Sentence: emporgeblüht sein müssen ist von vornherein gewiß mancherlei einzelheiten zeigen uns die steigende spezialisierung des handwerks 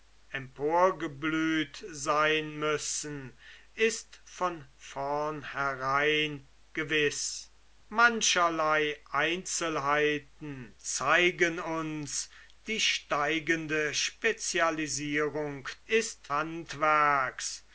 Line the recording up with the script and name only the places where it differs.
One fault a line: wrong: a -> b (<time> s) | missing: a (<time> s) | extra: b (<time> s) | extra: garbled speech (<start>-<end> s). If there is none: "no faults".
wrong: des -> ist (15.9 s)